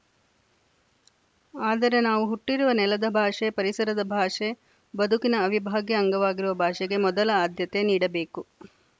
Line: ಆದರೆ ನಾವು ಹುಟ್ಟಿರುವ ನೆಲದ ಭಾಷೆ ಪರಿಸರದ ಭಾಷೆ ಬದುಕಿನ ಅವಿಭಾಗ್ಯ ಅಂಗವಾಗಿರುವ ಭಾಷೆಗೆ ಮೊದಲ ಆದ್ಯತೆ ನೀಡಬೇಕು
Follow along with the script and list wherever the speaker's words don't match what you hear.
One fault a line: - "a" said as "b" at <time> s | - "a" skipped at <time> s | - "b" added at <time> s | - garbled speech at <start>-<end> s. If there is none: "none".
none